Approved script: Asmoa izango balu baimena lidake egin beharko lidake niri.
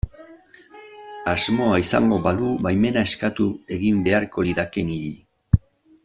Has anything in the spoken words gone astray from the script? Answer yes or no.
yes